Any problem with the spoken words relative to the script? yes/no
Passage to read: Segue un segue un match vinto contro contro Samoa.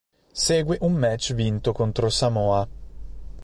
yes